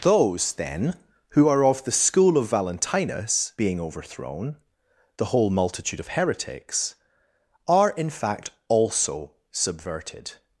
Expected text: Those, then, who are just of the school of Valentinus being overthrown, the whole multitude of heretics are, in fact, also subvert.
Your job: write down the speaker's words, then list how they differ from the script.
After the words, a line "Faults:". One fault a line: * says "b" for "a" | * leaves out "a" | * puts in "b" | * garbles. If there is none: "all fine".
Those, then, who are of the school of Valentinus being overthrown, the whole multitude of heretics are, in fact, also subverted.
Faults:
* leaves out "just"
* says "subverted" for "subvert"